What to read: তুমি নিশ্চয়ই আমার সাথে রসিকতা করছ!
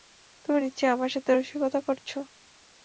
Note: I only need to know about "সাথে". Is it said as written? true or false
true